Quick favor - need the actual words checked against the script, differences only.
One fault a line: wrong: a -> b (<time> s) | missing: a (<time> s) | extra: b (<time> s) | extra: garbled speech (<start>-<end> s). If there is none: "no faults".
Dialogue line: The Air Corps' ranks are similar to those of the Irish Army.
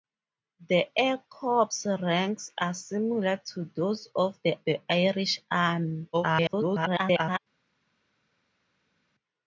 extra: the (4.6 s)
extra: garbled speech (6.1-7.4 s)